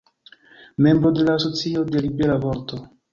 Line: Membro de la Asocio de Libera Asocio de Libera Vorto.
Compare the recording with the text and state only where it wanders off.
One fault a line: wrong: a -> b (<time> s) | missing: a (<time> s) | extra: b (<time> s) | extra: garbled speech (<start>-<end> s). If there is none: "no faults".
missing: Asocio de Libera (2.4 s)